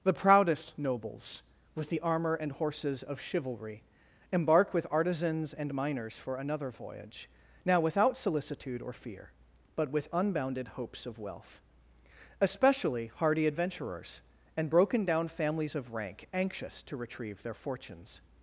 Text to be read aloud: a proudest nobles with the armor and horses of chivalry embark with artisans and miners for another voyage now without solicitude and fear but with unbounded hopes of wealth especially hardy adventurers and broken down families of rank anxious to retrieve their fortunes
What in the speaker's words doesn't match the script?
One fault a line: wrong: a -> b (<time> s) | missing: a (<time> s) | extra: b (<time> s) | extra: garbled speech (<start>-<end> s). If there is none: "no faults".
wrong: a -> the (0.0 s)
wrong: and -> or (8.8 s)